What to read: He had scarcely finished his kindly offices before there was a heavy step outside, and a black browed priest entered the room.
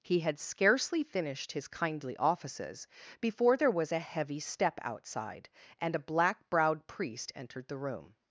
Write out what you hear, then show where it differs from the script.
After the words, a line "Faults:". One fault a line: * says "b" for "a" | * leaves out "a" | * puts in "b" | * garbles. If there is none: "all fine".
He had scarcely finished his kindly offices before there was a heavy step outside, and a black browed priest entered the room.
Faults:
all fine